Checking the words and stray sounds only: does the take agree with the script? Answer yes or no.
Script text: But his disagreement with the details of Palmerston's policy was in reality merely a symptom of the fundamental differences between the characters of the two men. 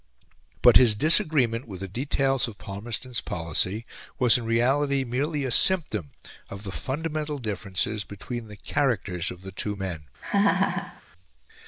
no